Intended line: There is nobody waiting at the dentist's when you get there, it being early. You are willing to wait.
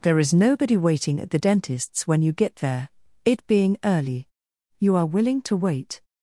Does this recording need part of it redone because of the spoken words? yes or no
no